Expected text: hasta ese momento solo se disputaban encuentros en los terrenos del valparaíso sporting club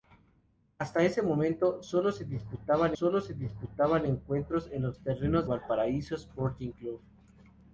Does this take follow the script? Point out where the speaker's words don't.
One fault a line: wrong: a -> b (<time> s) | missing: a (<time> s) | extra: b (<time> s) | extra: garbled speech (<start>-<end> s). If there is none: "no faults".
extra: solo se disputaban (2.9 s)
missing: del (5.5 s)